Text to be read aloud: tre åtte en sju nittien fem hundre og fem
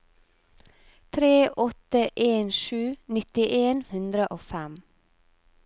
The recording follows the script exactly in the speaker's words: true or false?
false